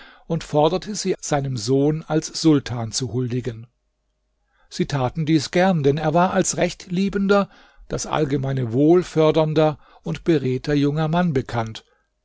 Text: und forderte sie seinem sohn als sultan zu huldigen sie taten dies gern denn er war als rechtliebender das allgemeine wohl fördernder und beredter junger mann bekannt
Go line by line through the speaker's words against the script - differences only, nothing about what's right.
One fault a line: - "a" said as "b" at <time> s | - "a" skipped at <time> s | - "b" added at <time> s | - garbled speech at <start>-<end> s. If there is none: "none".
none